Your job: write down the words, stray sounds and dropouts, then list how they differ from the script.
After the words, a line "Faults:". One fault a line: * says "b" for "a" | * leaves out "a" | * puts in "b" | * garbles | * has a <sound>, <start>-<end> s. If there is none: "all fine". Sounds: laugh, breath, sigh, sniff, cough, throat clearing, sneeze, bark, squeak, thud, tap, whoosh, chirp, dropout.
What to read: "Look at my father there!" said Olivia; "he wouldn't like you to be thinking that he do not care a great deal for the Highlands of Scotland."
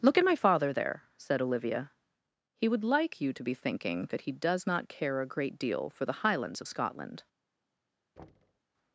"Look at my father there!" said Olivia; "he would like you to be thinking that he does not care a great deal for the Highlands of Scotland."
Faults:
* says "would" for "wouldn't"
* says "does" for "do"
* has a thud, 8.2-8.6 s